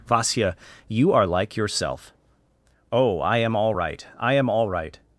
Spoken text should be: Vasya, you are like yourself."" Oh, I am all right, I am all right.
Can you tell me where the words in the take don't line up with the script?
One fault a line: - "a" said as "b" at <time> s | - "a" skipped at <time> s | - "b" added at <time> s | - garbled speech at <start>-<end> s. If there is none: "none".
none